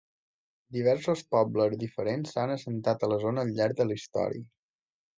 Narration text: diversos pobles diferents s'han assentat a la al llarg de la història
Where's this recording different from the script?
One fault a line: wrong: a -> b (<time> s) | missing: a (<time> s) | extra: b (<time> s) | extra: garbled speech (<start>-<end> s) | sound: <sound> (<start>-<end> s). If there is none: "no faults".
extra: zona (3.3 s)